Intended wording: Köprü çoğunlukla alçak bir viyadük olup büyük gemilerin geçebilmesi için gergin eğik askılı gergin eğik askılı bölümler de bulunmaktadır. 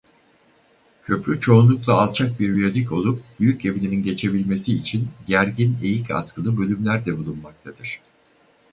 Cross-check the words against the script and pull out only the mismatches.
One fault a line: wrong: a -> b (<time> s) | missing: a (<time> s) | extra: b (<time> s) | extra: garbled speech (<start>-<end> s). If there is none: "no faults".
missing: gergin eğik askılı (6.6 s)